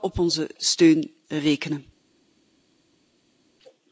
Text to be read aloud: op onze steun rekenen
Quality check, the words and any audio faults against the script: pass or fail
pass